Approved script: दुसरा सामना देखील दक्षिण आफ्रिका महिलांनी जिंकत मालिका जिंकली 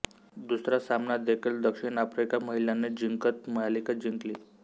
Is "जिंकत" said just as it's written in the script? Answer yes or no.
yes